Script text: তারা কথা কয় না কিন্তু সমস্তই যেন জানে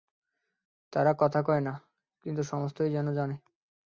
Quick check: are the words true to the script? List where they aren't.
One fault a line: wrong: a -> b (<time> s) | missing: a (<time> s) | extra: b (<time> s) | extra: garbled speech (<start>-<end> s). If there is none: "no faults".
no faults